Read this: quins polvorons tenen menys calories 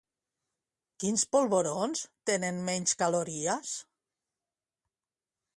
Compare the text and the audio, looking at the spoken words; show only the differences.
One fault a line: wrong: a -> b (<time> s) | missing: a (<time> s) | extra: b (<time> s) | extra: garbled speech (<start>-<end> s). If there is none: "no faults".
no faults